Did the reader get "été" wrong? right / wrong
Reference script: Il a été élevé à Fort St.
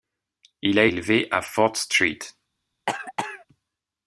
wrong